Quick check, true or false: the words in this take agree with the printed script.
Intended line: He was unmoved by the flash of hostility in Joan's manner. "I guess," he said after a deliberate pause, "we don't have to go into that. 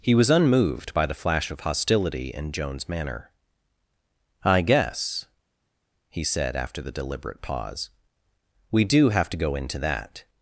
false